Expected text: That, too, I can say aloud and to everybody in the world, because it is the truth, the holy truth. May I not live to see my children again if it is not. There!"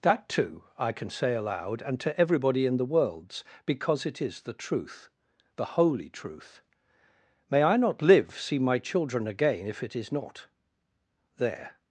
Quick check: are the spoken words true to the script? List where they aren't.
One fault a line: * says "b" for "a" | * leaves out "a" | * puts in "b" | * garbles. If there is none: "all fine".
* says "worlds" for "world"
* leaves out "to"